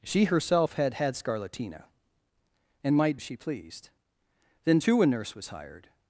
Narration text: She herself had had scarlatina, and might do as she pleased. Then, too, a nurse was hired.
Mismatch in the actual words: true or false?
true